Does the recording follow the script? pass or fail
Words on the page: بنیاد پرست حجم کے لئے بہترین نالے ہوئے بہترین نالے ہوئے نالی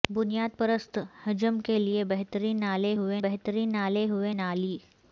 pass